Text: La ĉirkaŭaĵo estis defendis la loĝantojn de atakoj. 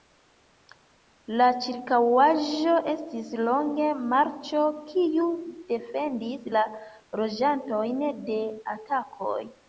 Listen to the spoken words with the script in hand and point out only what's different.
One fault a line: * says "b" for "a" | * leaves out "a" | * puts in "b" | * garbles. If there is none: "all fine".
* puts in "longe marĉo kiu"